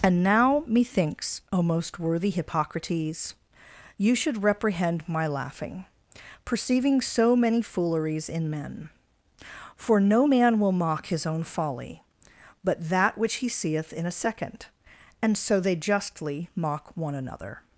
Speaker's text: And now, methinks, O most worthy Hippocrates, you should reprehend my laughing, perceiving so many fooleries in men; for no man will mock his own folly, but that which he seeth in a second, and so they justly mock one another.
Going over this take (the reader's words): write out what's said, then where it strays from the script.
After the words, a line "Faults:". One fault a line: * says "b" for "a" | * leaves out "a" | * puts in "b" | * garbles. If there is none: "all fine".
And now, methinks, O most worthy Hippocrates, you should reprehend my laughing, perceiving so many fooleries in men; for no man will mock his own folly, but that which he seeth in a second, and so they justly mock one another.
Faults:
all fine